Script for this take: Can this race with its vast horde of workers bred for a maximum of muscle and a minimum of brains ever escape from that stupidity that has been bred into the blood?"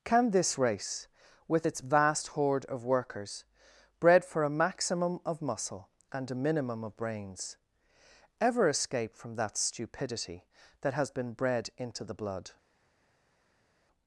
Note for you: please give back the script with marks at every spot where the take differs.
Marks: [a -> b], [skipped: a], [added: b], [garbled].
Can this race with its vast horde of workers bred for a maximum of muscle and a minimum of brains ever escape from that stupidity that has been bred into the blood?"